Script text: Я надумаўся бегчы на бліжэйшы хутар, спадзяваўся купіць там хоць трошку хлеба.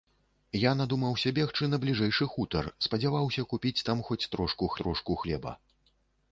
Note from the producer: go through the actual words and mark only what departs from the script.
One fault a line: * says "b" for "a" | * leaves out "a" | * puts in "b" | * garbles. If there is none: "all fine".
* puts in "трошку"